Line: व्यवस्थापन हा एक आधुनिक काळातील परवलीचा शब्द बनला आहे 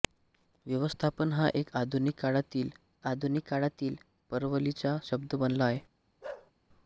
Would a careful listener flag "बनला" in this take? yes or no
no